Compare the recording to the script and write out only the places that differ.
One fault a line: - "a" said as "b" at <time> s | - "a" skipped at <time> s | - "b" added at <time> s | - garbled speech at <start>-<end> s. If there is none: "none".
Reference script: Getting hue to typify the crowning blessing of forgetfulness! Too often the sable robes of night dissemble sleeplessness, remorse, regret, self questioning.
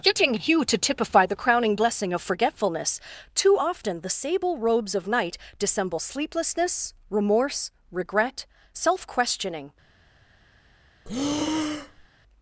none